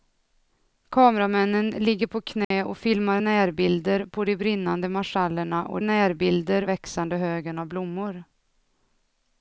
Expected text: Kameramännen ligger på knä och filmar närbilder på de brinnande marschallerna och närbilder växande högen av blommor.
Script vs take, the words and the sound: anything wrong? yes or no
yes